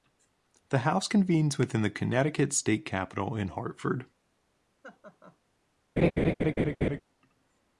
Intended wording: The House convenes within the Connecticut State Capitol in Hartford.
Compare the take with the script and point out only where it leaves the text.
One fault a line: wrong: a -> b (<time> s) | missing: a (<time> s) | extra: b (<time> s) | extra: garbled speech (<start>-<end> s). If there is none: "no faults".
no faults